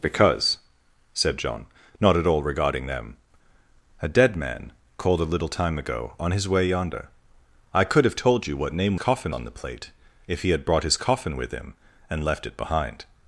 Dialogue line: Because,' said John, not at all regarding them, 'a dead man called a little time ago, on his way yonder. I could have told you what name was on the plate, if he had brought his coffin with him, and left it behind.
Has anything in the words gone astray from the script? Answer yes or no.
yes